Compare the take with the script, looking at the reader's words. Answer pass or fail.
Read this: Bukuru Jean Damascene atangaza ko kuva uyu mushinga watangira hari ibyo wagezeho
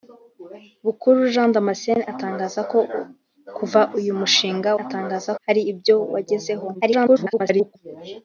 fail